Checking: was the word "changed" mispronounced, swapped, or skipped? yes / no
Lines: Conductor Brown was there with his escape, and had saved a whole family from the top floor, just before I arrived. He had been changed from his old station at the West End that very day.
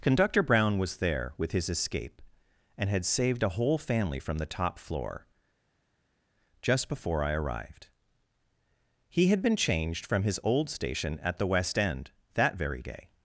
no